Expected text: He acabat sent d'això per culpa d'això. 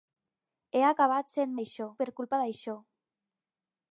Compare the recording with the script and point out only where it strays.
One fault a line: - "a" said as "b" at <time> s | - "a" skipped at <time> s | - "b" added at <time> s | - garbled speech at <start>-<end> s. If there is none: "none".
none